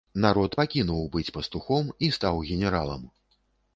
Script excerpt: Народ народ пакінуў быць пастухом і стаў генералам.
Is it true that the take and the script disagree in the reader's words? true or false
true